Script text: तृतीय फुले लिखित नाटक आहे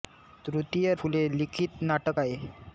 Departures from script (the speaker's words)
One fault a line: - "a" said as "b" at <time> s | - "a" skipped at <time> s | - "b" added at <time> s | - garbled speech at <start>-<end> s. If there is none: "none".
none